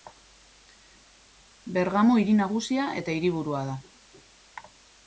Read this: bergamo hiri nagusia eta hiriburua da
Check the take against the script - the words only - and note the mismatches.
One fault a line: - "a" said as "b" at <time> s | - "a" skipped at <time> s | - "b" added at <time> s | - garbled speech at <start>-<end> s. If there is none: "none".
none